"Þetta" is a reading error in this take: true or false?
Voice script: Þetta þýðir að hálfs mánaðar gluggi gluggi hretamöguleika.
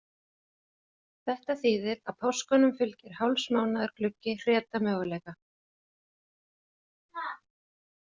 false